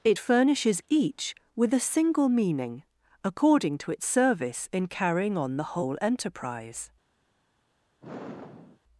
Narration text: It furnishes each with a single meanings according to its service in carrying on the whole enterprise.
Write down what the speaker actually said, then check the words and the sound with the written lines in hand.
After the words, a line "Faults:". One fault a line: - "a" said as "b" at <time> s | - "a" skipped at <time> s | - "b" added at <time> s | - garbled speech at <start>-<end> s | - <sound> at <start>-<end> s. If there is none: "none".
It furnishes each with a single meaning according to its service in carrying on the whole enterprise.
Faults:
- "meanings" said as "meaning" at 2.3 s
- sigh at 8.0-8.8 s